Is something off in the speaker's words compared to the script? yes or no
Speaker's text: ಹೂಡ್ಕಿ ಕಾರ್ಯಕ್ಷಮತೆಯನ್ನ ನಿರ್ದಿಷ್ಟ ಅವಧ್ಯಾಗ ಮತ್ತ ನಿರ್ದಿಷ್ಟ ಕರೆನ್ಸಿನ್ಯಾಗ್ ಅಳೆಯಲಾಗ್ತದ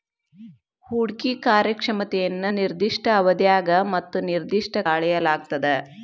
yes